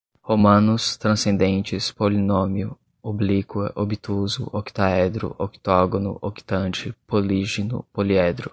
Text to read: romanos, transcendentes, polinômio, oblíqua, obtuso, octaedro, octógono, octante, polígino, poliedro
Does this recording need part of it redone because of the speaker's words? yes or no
no